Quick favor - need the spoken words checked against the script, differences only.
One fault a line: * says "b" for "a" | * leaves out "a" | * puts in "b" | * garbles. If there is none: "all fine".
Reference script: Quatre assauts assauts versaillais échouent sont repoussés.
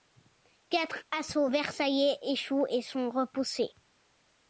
* leaves out "assauts"
* puts in "et"